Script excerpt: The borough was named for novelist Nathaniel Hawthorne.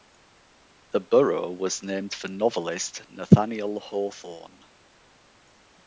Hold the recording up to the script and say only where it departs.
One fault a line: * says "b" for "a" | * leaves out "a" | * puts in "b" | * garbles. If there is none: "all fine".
all fine